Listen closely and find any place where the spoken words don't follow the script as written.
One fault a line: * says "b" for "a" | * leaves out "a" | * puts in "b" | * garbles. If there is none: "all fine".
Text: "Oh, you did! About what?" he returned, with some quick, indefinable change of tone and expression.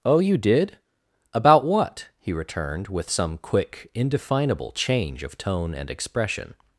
all fine